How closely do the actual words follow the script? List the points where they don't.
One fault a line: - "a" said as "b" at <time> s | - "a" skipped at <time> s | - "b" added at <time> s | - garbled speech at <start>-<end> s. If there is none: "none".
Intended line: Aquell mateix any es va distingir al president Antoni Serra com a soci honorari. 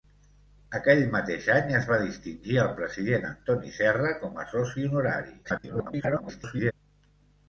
- garbled speech at 5.4-6.7 s